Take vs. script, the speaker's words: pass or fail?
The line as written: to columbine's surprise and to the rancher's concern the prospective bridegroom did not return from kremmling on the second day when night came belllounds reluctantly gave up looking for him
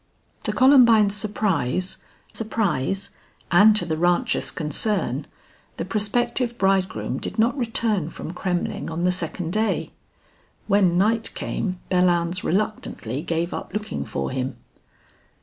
fail